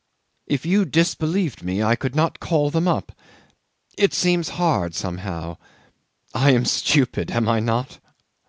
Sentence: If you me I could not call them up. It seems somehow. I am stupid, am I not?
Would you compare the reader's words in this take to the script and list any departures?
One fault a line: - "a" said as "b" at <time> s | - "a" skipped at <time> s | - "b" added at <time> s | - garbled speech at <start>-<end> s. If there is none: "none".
- "disbelieved" added at 0.8 s
- "hard" added at 4.5 s